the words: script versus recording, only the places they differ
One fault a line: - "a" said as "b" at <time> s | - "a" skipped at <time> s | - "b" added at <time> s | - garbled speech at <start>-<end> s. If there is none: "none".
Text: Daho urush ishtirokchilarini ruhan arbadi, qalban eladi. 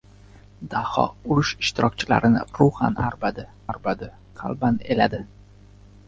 - "arbadi" added at 3.7 s